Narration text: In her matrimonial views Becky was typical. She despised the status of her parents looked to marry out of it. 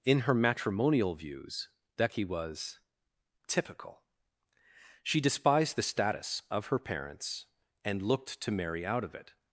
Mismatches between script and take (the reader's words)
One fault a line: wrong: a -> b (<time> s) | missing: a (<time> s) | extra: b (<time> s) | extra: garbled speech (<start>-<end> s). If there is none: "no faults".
extra: and (7.8 s)